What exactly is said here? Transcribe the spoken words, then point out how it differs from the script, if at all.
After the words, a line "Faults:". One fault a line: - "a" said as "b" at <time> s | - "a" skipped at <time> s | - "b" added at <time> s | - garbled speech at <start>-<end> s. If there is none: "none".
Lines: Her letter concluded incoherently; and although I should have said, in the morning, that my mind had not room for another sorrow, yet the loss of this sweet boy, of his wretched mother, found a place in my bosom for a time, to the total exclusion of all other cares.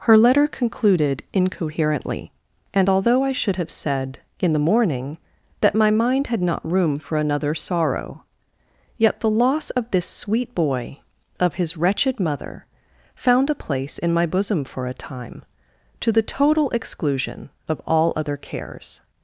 Her letter concluded incoherently; and although I should have said, in the morning, that my mind had not room for another sorrow, yet the loss of this sweet boy, of his wretched mother, found a place in my bosom for a time, to the total exclusion of all other cares.
Faults:
none